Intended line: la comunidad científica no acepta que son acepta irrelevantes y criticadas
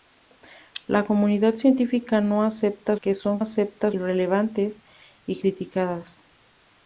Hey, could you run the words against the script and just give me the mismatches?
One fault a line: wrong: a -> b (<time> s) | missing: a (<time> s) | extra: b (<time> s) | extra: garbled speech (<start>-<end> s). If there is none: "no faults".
no faults